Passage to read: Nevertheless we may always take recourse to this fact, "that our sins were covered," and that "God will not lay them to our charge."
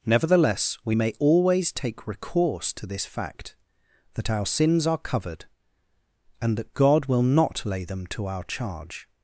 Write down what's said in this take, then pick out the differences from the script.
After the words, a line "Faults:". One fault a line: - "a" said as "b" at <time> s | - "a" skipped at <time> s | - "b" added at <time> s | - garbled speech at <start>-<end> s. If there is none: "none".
Nevertheless we may always take recourse to this fact, "that our sins are covered," and that "God will not lay them to our charge."
Faults:
- "were" said as "are" at 4.9 s